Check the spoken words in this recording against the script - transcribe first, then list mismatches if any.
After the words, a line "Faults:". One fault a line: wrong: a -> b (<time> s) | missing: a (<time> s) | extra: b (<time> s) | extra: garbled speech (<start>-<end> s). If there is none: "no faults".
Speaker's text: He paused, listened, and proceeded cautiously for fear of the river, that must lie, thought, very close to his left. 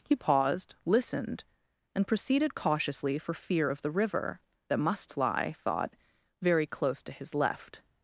He paused, listened, and proceeded cautiously for fear of the river, that must lie, thought, very close to his left.
Faults:
no faults